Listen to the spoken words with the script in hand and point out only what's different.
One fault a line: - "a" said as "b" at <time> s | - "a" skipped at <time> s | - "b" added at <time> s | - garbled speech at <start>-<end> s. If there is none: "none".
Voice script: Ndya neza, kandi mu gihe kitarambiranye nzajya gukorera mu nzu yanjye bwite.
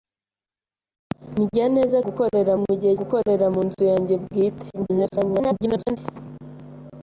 - "kandi" said as "gukorera" at 2.0 s
- "kitarambiranye nzajya" skipped at 2.9 s
- garbled speech at 4.7-6.0 s